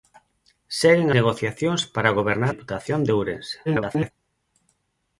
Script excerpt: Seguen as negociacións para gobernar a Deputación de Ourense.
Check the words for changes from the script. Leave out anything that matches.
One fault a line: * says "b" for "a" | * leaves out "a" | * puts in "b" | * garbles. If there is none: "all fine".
* leaves out "as"
* leaves out "a"
* garbles